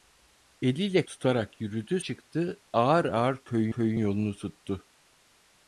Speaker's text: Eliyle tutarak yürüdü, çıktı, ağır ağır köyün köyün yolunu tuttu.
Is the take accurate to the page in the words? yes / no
yes